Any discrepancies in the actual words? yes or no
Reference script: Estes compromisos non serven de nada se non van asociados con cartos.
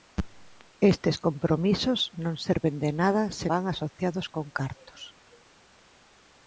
yes